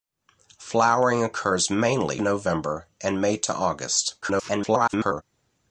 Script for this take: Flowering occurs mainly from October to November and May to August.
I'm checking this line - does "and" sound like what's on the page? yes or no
yes